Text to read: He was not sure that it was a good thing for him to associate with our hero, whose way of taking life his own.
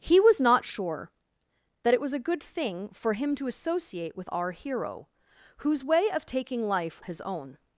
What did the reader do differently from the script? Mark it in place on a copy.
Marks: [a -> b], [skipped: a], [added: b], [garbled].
He was not sure that it was a good thing for him to associate with our hero, whose way of taking life his own.